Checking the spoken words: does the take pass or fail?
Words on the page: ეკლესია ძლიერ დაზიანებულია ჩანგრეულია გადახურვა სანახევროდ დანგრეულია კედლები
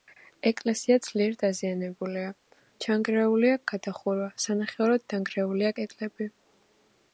pass